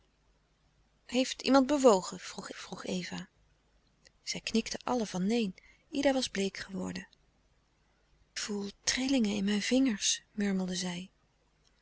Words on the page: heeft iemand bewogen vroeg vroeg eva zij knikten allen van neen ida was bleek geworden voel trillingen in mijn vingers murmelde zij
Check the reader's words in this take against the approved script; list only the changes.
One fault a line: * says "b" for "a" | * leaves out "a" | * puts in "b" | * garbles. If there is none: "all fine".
all fine